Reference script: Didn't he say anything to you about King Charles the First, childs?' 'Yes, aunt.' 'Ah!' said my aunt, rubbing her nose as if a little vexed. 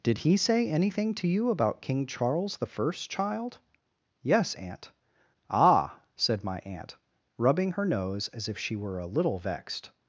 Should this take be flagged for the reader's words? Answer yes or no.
yes